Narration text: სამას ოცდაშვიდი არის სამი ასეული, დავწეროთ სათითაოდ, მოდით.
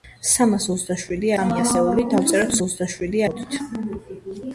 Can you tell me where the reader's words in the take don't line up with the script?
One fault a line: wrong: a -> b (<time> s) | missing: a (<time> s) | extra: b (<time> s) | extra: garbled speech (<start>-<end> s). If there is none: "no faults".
missing: არის (1.3 s)
wrong: სათითაოდ -> ოცდაშვიდი (2.7 s)